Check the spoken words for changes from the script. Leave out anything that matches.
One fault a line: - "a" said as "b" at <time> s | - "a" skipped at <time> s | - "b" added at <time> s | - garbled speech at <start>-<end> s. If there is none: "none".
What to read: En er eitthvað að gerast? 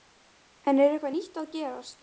- "nýtt" added at 1.1 s